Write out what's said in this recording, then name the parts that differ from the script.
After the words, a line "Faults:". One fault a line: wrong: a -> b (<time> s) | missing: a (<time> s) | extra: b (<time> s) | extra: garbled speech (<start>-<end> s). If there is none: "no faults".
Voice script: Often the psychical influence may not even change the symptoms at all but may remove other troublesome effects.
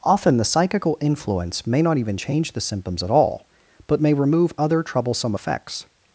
Often the psychical influence may not even change the symptoms at all but may remove other troublesome effects.
Faults:
no faults